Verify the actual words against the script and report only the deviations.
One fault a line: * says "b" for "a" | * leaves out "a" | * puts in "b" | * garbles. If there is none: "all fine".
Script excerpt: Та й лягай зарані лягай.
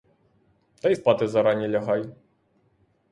* says "спати" for "лягай"